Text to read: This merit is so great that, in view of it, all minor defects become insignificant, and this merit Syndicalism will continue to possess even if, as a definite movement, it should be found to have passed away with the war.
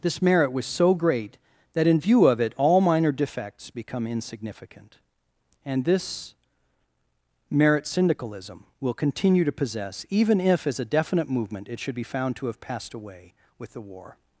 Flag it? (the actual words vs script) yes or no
yes